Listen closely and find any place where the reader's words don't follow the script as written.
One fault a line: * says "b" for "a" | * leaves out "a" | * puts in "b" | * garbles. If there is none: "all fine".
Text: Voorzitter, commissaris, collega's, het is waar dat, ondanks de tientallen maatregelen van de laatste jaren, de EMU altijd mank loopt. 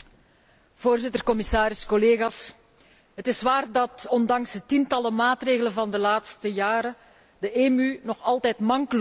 * puts in "nog"